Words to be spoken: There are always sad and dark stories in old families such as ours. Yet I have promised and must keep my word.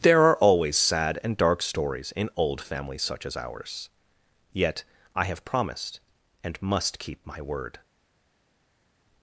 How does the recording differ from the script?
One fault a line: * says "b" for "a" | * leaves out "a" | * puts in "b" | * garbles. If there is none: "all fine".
all fine